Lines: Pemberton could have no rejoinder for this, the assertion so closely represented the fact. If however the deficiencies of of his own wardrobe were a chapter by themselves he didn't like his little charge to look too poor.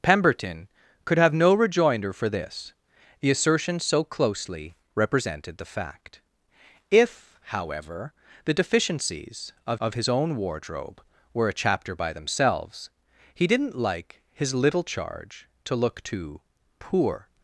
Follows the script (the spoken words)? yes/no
yes